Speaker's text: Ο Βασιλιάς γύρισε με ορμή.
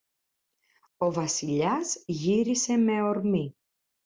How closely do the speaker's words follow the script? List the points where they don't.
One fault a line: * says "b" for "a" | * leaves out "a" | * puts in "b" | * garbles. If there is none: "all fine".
all fine